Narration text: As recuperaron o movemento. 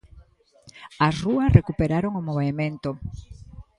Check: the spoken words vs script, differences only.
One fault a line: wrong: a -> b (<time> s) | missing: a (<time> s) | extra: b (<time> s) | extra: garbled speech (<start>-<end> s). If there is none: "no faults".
extra: rúas (1.2 s)